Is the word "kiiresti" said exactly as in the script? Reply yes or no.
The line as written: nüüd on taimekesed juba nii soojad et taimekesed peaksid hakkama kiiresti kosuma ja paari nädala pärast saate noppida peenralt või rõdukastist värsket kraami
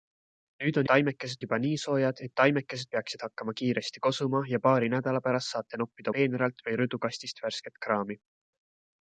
yes